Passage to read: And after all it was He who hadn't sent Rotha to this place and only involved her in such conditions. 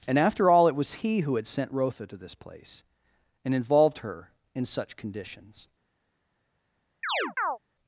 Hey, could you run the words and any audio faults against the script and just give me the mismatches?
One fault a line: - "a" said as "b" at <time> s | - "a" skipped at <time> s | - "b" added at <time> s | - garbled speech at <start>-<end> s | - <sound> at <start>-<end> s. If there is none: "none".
- "hadn't" said as "had" at 1.4 s
- "only" skipped at 3.5 s
- chirp at 7.0-7.6 s